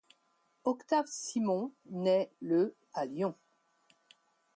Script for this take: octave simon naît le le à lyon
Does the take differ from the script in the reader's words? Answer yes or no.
yes